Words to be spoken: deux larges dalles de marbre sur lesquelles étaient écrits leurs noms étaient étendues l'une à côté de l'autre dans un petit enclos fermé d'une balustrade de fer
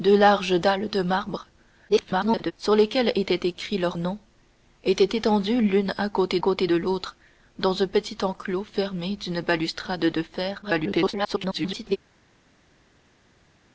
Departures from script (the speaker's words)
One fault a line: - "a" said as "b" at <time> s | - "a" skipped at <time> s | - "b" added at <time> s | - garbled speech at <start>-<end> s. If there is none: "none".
- garbled speech at 1.9-2.5 s
- "côté" added at 6.4 s
- garbled speech at 10.6-12.0 s